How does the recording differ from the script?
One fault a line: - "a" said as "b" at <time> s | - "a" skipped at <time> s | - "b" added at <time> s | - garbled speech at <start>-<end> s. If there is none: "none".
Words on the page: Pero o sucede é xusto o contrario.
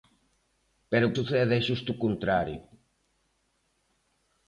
none